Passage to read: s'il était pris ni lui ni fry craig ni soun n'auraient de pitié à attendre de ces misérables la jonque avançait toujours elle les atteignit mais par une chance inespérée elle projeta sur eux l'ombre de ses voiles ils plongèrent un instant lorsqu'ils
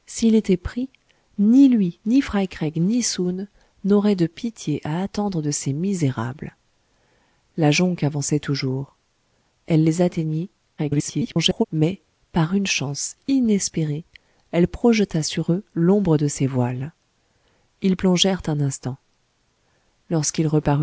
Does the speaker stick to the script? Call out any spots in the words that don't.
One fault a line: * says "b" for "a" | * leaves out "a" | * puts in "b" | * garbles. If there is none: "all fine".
* garbles